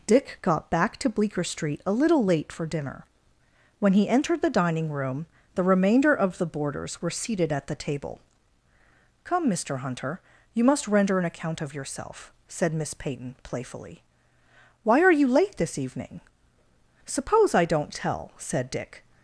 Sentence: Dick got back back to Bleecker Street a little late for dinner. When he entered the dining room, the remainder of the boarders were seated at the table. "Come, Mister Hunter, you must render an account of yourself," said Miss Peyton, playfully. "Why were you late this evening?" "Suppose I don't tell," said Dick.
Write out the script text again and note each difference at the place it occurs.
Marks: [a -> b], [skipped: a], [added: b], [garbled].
Dick got back [skipped: back] to Bleecker Street a little late for dinner. When he entered the dining room, the remainder of the boarders were seated at the table. "Come, Mister Hunter, you must render an account of yourself," said Miss Peyton, playfully. "Why [were -> are] you late this evening?" "Suppose I don't tell," said Dick.